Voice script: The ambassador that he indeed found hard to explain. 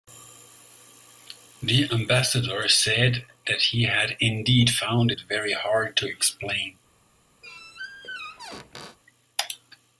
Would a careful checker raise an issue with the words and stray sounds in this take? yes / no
yes